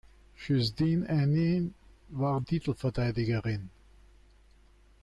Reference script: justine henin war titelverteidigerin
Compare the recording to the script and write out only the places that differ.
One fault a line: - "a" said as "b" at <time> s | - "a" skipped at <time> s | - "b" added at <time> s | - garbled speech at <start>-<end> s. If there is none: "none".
none